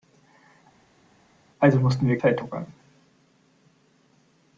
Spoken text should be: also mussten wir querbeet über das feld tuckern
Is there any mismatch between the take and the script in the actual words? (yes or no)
yes